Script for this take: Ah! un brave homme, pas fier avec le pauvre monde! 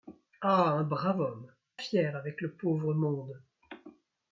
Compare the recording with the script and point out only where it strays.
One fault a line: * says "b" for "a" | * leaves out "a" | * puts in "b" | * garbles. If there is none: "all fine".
* leaves out "pas"